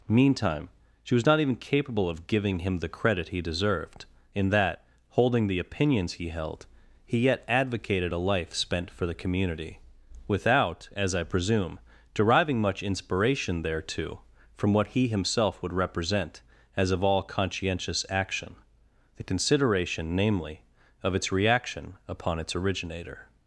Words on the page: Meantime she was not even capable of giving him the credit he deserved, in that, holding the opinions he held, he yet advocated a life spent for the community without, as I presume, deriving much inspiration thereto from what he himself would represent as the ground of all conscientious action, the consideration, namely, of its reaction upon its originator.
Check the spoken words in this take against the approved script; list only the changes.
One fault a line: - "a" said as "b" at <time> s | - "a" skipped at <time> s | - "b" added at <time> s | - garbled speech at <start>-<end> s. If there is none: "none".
- "the ground" skipped at 16.9 s